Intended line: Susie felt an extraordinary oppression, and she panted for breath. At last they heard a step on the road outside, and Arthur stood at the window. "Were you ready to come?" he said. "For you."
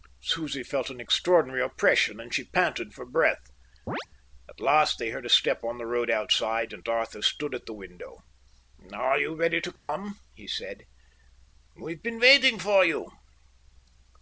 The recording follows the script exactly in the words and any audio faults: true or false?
false